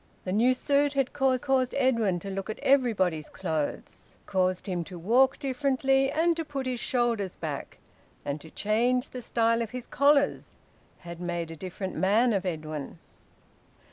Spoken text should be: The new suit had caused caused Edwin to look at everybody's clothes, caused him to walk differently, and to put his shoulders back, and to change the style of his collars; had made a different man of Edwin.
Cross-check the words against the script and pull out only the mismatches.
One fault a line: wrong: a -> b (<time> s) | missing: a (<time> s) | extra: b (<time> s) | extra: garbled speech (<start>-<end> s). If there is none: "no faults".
no faults